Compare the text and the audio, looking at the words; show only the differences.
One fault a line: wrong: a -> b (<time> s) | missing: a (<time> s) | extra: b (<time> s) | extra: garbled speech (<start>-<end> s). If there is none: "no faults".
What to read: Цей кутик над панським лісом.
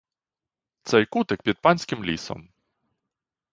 wrong: над -> під (1.4 s)